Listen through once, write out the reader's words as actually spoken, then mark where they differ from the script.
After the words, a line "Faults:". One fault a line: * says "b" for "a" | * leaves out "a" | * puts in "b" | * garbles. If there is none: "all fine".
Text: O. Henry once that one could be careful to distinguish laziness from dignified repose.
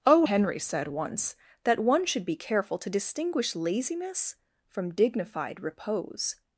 O. Henry said once that one should be careful to distinguish laziness from dignified repose.
Faults:
* puts in "said"
* says "should" for "could"